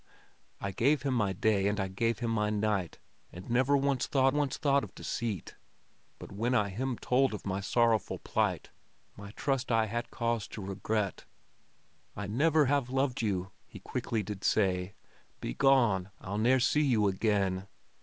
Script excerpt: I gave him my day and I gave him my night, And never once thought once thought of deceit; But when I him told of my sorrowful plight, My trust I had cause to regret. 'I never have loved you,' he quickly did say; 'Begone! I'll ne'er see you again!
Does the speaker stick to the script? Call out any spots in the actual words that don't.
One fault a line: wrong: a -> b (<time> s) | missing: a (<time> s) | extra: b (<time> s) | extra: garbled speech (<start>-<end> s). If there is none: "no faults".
no faults